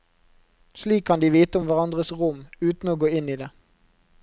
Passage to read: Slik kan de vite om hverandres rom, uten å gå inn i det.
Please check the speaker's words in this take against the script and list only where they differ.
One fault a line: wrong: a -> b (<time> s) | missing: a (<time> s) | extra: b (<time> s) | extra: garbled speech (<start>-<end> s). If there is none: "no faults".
no faults